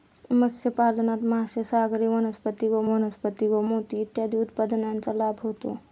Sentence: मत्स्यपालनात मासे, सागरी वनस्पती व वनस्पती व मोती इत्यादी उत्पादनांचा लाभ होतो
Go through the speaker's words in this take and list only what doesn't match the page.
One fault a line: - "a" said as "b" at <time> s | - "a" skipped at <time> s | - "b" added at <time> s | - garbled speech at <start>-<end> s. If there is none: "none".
none